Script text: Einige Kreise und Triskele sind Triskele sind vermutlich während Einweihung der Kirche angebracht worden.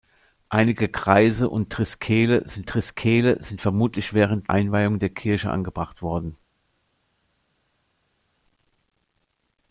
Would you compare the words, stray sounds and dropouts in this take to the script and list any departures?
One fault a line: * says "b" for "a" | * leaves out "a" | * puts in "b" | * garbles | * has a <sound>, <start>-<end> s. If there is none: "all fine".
all fine